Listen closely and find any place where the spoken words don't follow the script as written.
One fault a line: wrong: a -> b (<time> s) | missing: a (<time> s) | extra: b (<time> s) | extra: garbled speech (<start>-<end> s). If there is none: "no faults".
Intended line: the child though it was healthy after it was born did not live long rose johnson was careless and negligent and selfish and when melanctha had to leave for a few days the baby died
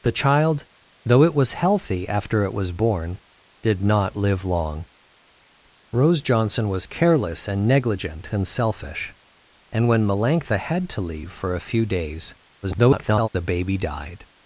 extra: garbled speech (12.6-13.3 s)